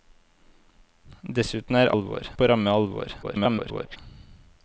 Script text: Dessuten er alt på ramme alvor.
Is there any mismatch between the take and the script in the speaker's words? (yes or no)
yes